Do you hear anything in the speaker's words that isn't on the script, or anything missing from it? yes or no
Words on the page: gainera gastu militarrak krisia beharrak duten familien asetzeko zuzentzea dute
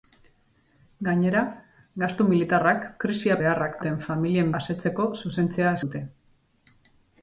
no